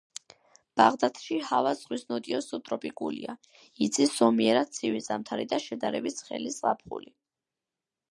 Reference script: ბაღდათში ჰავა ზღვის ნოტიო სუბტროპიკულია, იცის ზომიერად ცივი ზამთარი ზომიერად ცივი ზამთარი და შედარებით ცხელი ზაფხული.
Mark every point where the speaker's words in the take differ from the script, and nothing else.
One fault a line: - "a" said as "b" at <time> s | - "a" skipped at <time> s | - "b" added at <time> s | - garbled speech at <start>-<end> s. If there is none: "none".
- "ზომიერად ცივი ზამთარი" skipped at 5.5 s